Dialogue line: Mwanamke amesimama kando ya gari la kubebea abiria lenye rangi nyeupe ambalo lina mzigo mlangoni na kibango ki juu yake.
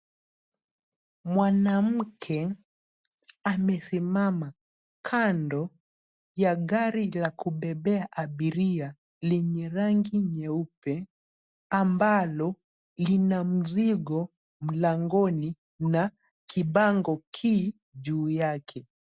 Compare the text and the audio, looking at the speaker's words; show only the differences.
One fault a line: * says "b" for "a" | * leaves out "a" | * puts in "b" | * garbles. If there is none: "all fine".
all fine